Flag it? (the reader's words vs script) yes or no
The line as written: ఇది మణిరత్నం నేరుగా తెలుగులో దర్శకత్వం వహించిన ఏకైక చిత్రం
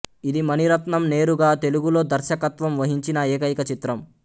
no